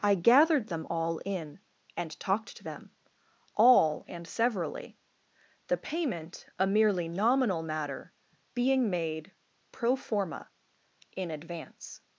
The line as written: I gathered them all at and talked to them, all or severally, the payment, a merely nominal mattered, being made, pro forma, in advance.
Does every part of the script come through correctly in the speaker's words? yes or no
no